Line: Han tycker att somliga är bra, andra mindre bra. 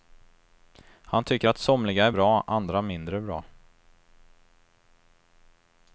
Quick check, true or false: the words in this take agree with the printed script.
true